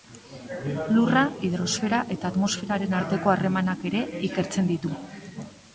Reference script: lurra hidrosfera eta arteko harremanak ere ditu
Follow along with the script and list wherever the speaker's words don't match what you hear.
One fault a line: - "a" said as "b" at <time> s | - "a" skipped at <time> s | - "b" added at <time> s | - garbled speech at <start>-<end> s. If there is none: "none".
- "atmosferaren" added at 2.3 s
- "ikertzen" added at 4.3 s